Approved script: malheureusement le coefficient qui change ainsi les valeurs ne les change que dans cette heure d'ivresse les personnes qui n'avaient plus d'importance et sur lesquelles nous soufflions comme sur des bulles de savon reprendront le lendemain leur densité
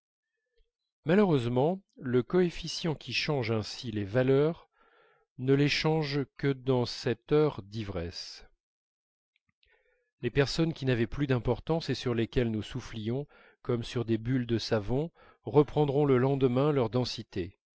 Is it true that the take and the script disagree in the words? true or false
false